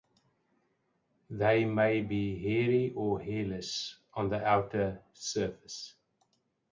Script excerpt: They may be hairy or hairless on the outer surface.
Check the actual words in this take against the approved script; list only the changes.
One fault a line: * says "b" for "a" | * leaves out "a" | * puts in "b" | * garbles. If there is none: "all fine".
all fine